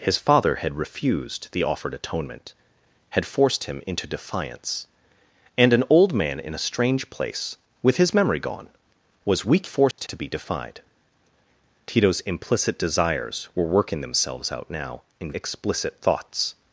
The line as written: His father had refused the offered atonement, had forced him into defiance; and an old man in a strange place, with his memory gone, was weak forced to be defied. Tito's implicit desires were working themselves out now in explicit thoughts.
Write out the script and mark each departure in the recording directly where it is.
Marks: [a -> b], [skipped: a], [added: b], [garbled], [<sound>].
His father had refused the offered atonement, had forced him into defiance; and an old man in a strange place, with his memory gone, was weak forced [dropout] to be defied. Tito's implicit desires were working themselves out now in explicit thoughts.